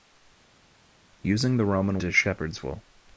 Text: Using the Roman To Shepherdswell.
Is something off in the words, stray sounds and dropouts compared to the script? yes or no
no